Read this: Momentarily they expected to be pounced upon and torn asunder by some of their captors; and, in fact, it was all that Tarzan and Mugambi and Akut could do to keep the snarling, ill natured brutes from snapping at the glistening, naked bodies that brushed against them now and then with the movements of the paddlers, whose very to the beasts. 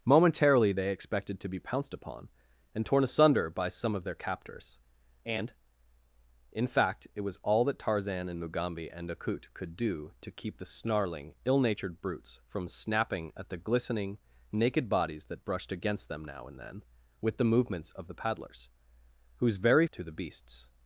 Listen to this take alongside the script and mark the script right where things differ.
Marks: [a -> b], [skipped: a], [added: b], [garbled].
Momentarily they expected to be pounced upon and torn asunder by some of their captors; and, in fact, it was all that Tarzan and Mugambi and Akut could do to keep the snarling, ill natured brutes from snapping at the glistening, naked bodies that brushed against them now and then with the movements of the paddlers, whose very to the beasts.